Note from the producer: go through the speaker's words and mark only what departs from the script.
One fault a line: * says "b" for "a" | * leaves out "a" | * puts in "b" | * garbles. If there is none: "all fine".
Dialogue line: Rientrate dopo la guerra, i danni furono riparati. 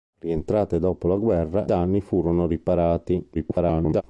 * leaves out "i"
* garbles